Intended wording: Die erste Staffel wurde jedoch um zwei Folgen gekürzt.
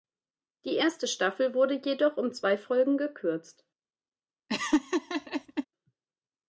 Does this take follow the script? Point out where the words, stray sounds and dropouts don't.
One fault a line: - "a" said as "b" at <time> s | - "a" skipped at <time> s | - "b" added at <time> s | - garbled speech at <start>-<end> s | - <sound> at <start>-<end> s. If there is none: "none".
- laugh at 4.5-5.7 s